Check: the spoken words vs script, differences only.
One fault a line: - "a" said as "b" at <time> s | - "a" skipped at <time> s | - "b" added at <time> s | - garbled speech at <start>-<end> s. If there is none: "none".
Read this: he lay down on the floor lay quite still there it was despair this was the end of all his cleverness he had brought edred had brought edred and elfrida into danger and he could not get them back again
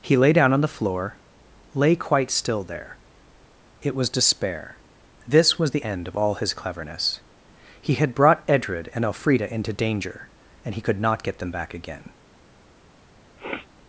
- "had brought edred" skipped at 8.9 s